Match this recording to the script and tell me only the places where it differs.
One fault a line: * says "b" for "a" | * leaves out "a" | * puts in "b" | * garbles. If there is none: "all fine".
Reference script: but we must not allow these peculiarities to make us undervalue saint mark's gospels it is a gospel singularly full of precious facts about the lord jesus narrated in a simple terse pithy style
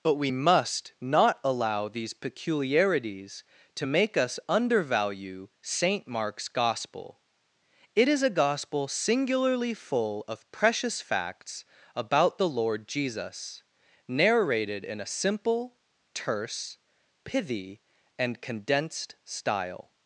* says "gospel" for "gospels"
* puts in "and condensed"